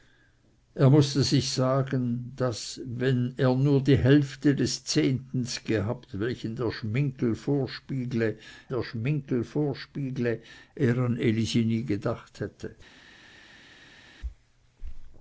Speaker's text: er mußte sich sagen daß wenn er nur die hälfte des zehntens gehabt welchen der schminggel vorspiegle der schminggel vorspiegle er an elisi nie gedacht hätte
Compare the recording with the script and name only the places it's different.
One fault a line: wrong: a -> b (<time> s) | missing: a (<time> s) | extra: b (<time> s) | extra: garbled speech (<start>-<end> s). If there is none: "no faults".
no faults